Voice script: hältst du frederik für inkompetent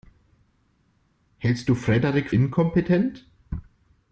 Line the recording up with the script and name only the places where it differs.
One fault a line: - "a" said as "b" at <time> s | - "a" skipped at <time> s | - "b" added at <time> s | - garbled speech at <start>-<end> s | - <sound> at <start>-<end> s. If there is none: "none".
- "für" skipped at 2.3 s